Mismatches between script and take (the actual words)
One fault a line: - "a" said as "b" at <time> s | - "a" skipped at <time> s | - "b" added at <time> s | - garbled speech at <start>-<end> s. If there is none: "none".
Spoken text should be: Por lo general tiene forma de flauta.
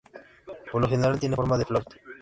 none